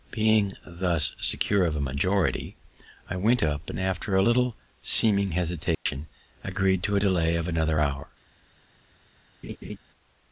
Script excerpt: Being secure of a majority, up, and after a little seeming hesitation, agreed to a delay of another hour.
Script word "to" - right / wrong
right